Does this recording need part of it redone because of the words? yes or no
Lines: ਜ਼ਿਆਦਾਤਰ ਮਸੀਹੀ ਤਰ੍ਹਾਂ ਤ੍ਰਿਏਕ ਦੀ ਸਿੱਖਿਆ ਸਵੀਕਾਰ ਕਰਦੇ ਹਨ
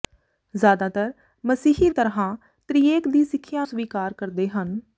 no